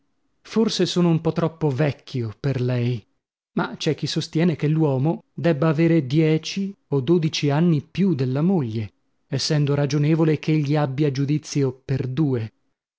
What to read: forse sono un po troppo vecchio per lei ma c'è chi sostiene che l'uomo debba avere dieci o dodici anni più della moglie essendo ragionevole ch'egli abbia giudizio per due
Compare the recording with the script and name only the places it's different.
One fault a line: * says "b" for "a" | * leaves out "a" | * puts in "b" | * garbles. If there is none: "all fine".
all fine